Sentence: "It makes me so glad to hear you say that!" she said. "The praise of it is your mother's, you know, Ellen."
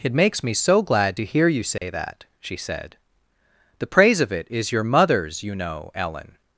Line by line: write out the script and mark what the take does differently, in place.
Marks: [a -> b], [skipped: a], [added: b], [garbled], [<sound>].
"It makes me so glad to hear you say [dropout] that!" she said. "The praise of it is your mother's, you know, Ellen."